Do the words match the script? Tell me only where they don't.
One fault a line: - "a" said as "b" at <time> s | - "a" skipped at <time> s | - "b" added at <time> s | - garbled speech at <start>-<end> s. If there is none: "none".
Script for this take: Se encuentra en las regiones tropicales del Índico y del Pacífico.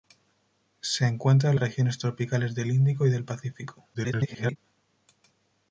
- "las" skipped at 1.6 s
- garbled speech at 3.9-4.6 s